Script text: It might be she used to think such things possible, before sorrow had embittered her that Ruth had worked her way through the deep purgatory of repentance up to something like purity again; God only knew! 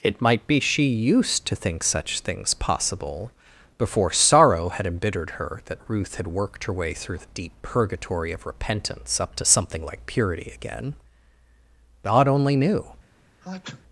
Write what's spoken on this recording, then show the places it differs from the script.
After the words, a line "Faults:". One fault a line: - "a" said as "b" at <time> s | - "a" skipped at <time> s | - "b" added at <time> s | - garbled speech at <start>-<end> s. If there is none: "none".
It might be she used to think such things possible, before sorrow had embittered her that Ruth had worked her way through the deep purgatory of repentance up to something like purity again; God only knew!
Faults:
none